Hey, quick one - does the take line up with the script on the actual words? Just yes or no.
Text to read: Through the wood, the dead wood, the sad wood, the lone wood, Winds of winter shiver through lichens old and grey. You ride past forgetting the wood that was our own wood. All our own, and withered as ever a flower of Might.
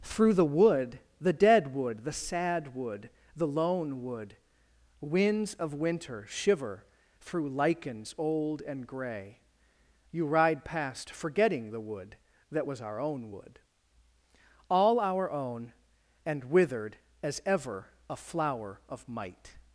yes